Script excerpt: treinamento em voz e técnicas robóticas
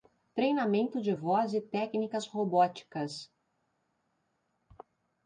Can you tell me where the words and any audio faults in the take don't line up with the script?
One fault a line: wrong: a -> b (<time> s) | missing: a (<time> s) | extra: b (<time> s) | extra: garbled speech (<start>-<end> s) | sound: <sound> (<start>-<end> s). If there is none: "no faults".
wrong: em -> de (1.0 s)